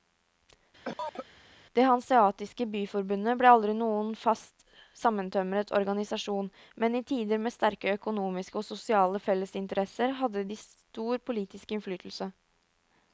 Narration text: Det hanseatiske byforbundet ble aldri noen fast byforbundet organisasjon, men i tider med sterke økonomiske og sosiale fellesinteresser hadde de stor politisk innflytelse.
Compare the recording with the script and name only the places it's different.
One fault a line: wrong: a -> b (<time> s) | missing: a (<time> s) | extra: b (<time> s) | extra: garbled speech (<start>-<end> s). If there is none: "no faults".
wrong: byforbundet -> sammentømret (5.0 s)